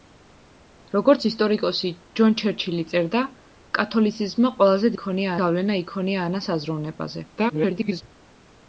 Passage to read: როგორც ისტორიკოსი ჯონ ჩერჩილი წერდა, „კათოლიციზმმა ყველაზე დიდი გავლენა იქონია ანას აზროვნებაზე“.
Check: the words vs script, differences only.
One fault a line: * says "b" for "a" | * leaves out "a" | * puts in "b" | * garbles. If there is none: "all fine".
* says "იქონია" for "დიდი"
* garbles